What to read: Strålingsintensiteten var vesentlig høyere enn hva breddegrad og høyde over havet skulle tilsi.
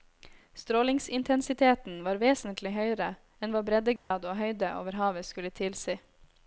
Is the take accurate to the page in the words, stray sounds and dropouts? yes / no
no